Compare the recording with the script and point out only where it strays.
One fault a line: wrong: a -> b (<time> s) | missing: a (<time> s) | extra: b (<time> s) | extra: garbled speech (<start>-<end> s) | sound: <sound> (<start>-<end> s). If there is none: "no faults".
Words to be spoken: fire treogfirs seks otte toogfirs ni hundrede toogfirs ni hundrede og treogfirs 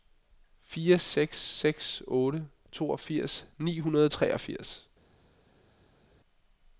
wrong: treogfirs -> seks (1.0 s)
missing: toogfirs ni hundrede (4.0 s)